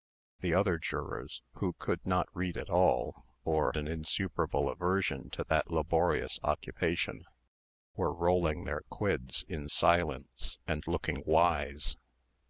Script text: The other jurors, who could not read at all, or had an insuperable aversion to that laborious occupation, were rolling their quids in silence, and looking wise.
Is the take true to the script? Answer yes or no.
no